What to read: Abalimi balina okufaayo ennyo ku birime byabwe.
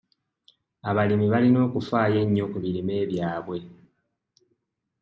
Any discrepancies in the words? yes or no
no